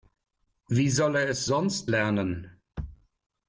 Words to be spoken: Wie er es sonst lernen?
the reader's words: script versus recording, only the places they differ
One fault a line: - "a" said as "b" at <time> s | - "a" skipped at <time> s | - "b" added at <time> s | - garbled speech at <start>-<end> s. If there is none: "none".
- "soll" added at 0.9 s